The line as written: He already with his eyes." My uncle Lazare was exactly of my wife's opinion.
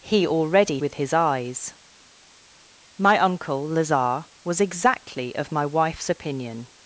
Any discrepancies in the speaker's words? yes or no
no